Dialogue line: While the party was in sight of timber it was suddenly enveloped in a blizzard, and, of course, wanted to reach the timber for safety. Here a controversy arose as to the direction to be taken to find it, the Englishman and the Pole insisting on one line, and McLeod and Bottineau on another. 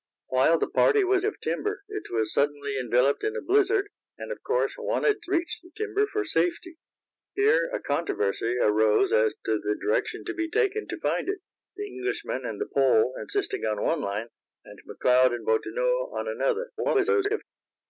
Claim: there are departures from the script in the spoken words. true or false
true